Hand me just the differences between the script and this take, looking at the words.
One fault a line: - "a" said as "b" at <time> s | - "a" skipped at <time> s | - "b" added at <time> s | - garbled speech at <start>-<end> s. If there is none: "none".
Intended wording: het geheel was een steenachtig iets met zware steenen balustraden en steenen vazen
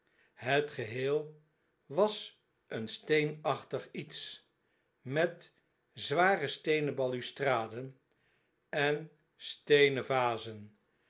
none